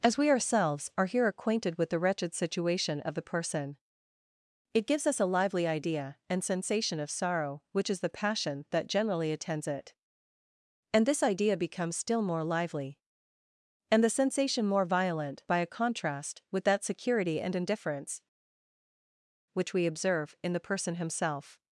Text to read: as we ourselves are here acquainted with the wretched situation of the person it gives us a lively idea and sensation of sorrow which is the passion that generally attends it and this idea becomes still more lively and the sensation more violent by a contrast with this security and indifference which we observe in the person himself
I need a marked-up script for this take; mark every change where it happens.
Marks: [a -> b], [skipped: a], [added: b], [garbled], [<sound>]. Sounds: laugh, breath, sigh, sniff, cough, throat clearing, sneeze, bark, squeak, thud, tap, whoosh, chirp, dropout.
as we ourselves are here acquainted with the wretched situation of the person it gives us a lively idea and sensation of sorrow which is the passion that generally attends it and this idea becomes still more lively and the sensation more violent by a contrast with [this -> that] security and indifference which we observe in the person himself